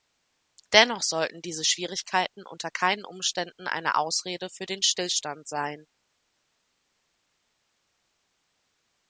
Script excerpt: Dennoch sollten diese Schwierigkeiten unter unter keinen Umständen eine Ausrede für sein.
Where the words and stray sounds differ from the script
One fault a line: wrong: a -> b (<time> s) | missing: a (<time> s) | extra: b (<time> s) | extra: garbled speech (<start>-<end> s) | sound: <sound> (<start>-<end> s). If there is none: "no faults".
missing: unter (2.7 s)
extra: den Stillstand (4.7 s)